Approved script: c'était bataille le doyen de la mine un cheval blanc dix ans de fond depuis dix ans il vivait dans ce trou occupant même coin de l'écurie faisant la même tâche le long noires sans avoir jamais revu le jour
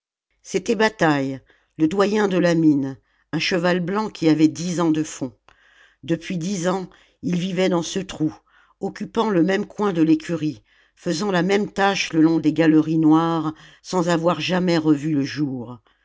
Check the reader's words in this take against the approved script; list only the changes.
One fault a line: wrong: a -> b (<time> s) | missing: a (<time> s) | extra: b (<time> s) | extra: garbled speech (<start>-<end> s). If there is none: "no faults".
extra: qui avait (4.1 s)
extra: le (9.3 s)
extra: des galeries (12.4 s)